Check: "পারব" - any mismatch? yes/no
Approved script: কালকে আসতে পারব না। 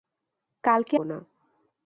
yes